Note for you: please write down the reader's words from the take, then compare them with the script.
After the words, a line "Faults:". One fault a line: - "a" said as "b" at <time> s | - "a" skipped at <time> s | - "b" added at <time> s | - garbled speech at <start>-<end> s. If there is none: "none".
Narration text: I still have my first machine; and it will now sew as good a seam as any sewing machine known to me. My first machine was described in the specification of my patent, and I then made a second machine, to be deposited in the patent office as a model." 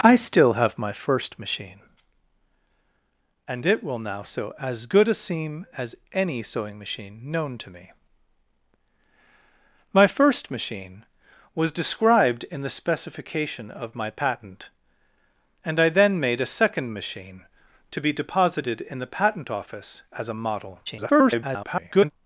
I still have my first machine; and it will now sew as good a seam as any sewing machine known to me. My first machine was described in the specification of my patent, and I then made a second machine, to be deposited in the patent office as a model." [garbled]
Faults:
- garbled speech at 20.9-22.1 s